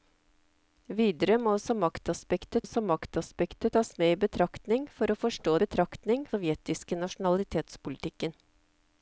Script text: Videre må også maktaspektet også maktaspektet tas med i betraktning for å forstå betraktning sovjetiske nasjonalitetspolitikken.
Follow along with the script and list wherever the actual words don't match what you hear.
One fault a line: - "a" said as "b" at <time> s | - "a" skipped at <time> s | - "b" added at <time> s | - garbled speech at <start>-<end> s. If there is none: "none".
none